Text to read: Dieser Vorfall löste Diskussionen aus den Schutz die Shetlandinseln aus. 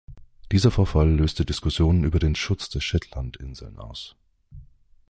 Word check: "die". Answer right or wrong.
wrong